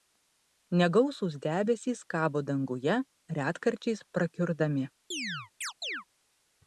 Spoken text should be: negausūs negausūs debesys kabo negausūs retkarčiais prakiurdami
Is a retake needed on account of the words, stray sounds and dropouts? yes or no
yes